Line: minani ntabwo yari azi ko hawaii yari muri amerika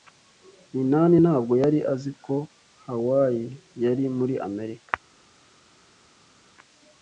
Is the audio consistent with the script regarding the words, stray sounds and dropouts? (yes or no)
yes